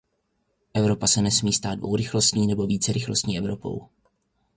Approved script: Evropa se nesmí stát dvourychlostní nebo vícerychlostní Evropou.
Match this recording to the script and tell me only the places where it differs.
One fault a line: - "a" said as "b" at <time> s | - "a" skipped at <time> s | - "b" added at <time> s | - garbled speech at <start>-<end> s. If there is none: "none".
none